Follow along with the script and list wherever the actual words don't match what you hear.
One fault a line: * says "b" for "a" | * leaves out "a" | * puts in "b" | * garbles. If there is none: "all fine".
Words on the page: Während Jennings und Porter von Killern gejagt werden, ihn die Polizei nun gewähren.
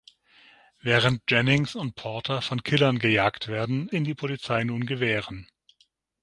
all fine